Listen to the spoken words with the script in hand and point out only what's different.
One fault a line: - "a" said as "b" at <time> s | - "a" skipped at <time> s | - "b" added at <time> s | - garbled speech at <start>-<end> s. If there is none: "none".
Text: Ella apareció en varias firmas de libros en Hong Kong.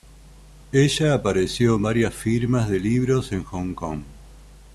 none